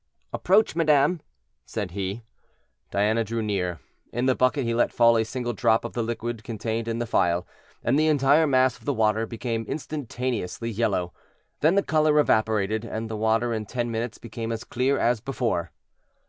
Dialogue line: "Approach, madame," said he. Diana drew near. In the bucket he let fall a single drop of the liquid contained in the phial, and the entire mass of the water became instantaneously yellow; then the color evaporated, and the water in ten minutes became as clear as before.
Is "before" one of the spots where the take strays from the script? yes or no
no